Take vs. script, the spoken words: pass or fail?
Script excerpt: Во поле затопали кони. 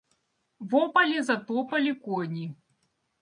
pass